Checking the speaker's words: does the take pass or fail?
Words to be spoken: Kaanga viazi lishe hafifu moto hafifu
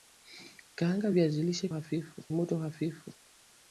pass